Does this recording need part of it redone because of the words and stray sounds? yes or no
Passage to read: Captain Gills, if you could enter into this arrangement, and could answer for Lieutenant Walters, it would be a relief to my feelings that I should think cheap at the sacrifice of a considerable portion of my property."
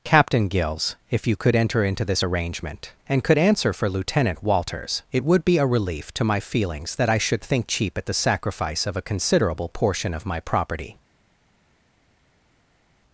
no